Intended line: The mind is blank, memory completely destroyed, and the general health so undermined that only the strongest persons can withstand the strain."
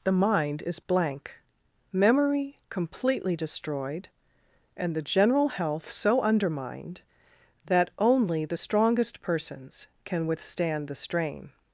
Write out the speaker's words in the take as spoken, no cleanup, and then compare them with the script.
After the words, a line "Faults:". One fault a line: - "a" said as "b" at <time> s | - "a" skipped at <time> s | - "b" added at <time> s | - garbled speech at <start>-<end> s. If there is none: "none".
The mind is blank, memory completely destroyed, and the general health so undermined that only the strongest persons can withstand the strain."
Faults:
none